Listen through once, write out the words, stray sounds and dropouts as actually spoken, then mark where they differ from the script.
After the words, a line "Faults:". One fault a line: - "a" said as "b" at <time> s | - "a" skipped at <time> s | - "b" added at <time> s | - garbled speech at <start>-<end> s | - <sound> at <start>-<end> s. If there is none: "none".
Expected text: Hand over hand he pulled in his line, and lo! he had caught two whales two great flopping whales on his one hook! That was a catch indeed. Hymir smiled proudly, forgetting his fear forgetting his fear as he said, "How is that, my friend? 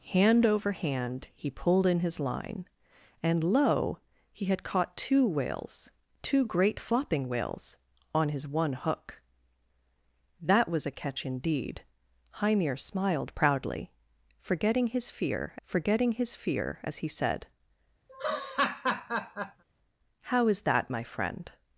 Hand over hand he pulled in his line, and lo! he had caught two whales two great flopping whales on his one hook! That was a catch indeed. Hymir smiled proudly, forgetting his fear forgetting his fear as he said, "How is that, my friend?
Faults:
- laugh at 18.1-19.6 s